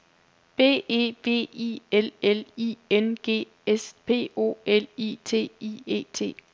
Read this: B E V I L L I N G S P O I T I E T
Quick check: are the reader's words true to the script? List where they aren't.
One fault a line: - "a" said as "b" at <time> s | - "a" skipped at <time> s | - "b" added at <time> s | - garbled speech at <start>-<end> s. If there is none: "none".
- "L" added at 4.6 s